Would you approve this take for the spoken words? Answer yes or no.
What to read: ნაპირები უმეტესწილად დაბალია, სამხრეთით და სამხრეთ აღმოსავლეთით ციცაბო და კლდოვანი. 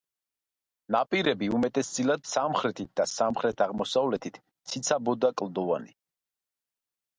no